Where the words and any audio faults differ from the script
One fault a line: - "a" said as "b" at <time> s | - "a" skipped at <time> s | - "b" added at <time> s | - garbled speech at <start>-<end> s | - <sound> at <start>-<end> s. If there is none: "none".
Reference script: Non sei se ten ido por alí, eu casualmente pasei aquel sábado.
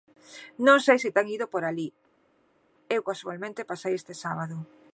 - "aquel" said as "este" at 4.0 s